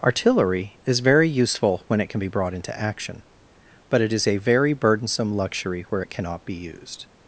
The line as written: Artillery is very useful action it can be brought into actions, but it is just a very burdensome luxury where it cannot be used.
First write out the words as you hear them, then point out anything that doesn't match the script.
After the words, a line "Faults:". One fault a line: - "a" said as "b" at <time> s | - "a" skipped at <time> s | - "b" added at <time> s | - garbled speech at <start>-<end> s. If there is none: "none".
Artillery is very useful when it can be brought into action, but it is a very burdensome luxury where it cannot be used.
Faults:
- "action" said as "when" at 1.9 s
- "actions" said as "action" at 2.8 s
- "just" skipped at 4.2 s